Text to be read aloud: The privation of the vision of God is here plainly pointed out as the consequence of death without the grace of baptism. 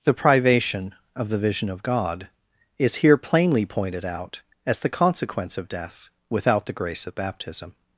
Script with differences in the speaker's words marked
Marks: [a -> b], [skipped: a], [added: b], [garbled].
The privation of the vision of God is here plainly pointed out as the consequence of death without the grace of baptism.